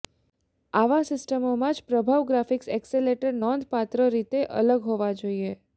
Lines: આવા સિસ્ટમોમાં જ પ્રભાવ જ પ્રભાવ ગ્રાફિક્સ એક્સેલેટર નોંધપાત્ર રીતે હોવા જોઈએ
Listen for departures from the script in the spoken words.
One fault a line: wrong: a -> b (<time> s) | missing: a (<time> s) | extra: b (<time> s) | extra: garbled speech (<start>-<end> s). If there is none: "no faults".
missing: જ પ્રભાવ (2.2 s)
extra: અલગ (4.6 s)